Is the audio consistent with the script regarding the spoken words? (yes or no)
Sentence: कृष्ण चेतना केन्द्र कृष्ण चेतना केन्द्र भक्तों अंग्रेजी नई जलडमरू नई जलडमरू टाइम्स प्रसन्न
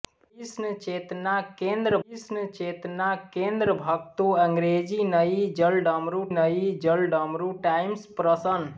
yes